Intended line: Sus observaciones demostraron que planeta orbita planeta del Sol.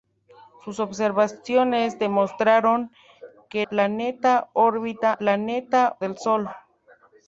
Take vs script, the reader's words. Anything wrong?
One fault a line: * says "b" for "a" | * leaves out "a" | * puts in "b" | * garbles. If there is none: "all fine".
all fine